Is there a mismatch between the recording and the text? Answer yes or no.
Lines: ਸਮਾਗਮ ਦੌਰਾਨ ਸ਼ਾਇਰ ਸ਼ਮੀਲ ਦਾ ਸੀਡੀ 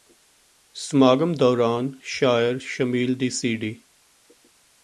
yes